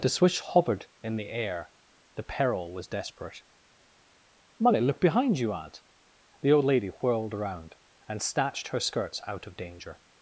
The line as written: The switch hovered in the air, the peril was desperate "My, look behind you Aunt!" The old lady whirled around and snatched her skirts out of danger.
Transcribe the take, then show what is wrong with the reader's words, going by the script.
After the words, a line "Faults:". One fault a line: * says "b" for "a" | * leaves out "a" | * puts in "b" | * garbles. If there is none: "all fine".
The switch hovered in the air, the peril was desperate "Molly, look behind you Aunt!" The old lady whirled around and snatched her skirts out of danger.
Faults:
* says "Molly" for "My"